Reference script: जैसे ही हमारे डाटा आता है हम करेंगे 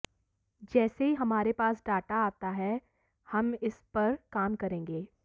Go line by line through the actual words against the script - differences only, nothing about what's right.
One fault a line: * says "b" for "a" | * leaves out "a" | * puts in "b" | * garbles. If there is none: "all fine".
* puts in "पास"
* puts in "इस पर काम"